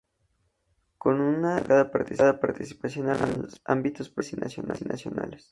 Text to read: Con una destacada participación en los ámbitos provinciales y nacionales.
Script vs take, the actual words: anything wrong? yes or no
no